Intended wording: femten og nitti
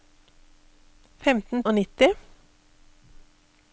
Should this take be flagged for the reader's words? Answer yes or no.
no